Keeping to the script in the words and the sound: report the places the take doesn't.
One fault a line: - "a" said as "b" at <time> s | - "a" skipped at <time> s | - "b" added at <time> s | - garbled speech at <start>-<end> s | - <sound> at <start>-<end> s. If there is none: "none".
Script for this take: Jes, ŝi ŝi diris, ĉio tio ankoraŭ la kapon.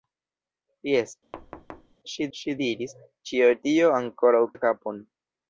- thud at 1.3-2.0 s